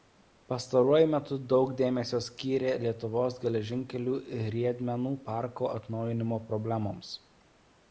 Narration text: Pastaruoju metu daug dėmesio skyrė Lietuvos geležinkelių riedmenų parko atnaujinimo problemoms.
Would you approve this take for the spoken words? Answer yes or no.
yes